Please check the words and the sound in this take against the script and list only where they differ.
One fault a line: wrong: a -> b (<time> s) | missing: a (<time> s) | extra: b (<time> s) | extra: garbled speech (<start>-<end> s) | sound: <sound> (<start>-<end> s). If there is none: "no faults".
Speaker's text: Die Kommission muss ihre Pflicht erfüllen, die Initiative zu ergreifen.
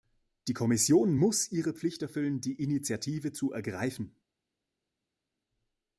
no faults